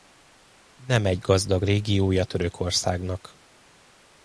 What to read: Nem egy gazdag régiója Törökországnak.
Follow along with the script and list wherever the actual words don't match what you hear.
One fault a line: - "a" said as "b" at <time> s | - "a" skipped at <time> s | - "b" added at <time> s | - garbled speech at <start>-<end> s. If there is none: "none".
none